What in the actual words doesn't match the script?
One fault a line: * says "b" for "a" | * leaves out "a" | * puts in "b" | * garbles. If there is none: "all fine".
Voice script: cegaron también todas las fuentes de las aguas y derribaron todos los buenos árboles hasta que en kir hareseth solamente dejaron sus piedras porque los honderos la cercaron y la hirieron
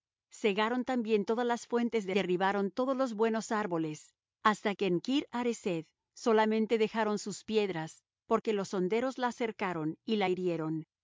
* leaves out "las aguas y"